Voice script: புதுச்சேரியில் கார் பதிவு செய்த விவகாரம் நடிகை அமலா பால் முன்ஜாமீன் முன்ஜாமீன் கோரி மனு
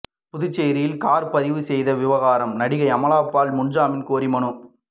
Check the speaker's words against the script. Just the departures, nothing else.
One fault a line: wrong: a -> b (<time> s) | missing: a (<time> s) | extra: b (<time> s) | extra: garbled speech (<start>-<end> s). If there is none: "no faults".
missing: முன்ஜாமீன் (4.1 s)